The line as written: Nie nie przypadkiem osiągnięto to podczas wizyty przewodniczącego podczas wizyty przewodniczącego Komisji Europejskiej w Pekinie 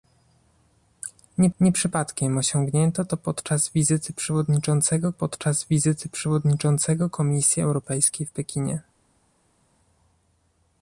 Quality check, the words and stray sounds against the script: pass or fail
pass